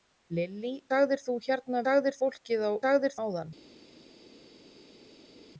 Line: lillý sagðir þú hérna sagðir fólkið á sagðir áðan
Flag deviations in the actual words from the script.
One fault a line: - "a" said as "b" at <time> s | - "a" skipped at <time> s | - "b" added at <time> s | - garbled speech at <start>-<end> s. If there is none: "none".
none